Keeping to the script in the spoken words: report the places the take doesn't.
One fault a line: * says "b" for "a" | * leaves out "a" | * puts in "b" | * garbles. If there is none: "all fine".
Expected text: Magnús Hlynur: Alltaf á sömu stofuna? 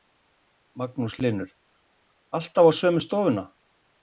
all fine